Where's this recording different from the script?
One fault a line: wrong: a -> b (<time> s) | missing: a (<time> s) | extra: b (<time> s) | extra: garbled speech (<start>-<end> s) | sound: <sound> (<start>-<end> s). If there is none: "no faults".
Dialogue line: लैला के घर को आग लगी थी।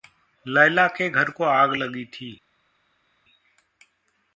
no faults